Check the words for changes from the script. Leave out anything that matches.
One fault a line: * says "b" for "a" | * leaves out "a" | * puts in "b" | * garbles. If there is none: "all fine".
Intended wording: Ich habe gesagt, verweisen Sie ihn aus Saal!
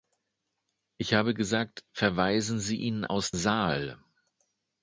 all fine